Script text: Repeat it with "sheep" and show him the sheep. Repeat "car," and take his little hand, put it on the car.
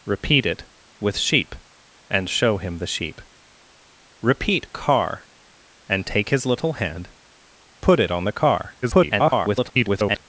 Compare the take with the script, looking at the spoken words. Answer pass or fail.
fail